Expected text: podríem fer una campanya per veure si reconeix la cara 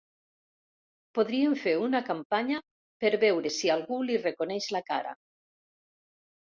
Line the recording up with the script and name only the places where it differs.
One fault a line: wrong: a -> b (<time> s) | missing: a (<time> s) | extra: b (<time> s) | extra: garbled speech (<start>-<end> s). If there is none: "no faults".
extra: algú li (3.8 s)